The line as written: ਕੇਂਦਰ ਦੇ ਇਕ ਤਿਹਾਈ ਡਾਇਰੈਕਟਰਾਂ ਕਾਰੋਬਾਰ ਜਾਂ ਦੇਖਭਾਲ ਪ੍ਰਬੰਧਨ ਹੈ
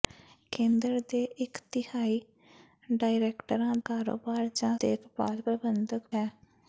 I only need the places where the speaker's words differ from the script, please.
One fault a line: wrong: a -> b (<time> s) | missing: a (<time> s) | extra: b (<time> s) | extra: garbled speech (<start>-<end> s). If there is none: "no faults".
no faults